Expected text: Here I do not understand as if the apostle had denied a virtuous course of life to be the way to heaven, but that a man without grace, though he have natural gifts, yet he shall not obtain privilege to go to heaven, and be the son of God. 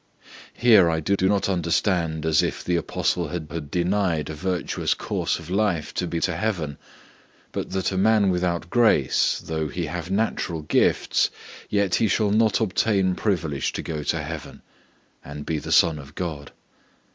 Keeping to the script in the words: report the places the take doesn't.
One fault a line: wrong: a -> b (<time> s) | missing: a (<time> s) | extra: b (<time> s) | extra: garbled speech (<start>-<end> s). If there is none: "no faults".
extra: do (1.1 s)
extra: had (3.5 s)
missing: the way (6.2 s)